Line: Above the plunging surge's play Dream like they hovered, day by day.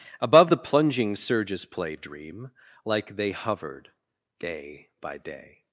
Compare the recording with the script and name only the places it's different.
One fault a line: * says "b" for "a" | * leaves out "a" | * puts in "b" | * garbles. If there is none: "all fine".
all fine